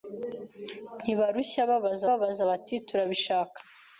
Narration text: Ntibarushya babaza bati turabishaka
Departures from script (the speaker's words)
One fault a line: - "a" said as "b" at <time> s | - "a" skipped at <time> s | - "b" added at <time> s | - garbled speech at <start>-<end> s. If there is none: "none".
- "babaza" added at 2.1 s